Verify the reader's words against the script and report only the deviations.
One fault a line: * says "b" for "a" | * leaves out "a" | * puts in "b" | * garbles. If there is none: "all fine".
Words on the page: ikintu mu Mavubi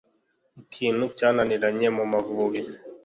* puts in "cyananiranye"